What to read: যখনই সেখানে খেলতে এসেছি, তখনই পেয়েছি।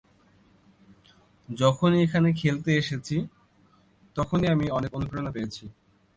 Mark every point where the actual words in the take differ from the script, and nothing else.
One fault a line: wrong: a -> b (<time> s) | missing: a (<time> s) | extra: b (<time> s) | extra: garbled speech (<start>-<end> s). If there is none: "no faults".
wrong: সেখানে -> এখানে (2.0 s)
extra: আমি অনেক অনুপ্রেরণা (4.5 s)